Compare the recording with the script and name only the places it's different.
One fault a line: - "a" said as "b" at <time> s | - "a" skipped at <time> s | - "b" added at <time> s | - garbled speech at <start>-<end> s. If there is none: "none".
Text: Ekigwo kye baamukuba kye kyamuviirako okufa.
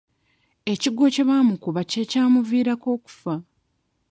none